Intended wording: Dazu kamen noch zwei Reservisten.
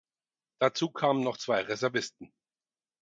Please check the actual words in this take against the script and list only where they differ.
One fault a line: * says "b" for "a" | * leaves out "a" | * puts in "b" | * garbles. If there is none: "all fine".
all fine